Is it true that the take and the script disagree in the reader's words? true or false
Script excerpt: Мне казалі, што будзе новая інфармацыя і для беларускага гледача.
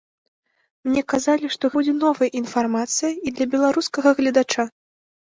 false